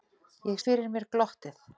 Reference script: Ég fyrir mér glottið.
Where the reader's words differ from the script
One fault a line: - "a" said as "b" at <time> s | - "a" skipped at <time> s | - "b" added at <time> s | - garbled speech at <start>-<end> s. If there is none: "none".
none